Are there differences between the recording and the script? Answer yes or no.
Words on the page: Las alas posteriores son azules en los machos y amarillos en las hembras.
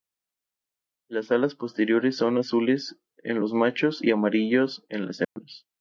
no